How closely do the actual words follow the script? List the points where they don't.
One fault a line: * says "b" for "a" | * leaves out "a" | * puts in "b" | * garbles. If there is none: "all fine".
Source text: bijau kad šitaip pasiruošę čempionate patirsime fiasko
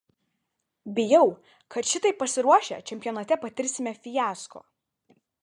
all fine